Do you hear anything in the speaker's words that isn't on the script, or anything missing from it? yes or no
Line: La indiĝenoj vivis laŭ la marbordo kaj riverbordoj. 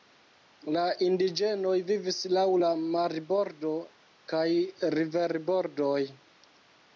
no